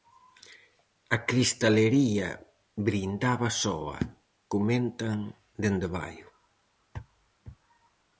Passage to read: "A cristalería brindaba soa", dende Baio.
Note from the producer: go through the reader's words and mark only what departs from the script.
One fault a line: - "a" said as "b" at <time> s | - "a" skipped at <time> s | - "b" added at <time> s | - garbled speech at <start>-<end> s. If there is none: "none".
- "comentan" added at 4.5 s